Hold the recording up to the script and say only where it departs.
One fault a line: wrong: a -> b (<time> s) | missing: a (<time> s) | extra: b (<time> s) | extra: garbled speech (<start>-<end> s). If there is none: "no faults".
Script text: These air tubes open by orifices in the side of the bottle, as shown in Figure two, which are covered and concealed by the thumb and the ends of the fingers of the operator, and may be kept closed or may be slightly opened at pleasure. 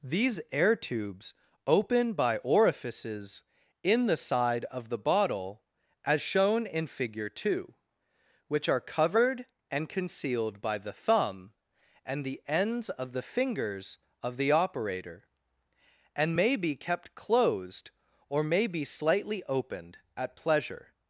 no faults